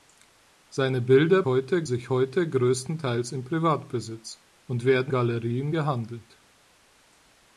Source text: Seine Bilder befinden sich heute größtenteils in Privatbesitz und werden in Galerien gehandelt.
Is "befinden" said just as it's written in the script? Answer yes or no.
no